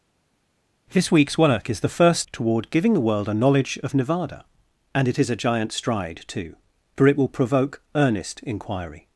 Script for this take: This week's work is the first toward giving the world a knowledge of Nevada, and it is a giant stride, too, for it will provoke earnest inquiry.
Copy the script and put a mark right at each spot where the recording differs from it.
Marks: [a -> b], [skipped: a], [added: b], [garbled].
This week's work is the first toward giving the world a knowledge of Nevada, and it is a giant stride, too, for it will provoke earnest inquiry.